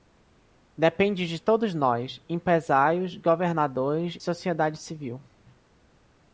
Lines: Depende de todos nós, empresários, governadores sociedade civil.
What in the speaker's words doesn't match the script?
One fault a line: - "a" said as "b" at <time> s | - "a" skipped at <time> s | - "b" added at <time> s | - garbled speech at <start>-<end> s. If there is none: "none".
none